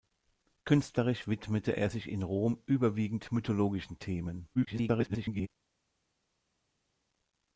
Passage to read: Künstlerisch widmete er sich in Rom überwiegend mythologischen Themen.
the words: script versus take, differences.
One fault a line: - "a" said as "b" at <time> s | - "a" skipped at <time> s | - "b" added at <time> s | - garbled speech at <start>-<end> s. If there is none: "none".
- garbled speech at 4.5-5.5 s